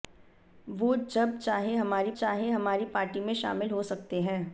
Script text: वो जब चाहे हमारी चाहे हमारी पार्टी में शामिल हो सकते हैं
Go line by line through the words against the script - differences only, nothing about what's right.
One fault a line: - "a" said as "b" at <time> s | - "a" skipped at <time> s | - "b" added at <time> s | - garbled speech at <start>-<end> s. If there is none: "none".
none